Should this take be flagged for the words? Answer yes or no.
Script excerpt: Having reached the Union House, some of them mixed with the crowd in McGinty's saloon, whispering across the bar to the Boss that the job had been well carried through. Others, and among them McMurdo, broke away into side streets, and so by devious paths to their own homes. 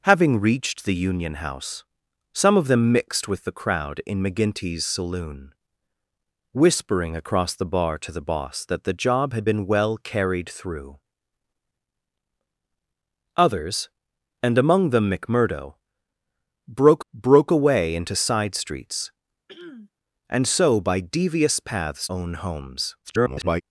yes